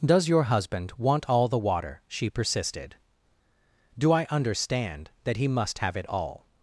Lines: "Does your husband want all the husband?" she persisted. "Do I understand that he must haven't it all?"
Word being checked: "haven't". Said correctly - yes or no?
no